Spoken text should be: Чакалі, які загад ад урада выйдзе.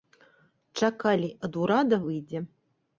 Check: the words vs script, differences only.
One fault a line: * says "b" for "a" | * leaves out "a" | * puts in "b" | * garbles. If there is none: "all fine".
* leaves out "які загад"